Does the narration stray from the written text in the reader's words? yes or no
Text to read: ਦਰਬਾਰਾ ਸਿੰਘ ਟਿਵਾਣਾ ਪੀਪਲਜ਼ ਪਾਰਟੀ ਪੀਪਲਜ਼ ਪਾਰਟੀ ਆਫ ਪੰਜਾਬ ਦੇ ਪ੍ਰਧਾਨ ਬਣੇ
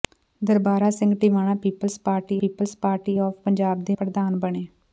no